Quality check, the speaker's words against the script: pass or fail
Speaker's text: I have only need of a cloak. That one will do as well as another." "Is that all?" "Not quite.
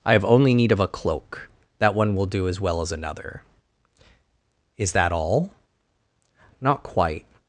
pass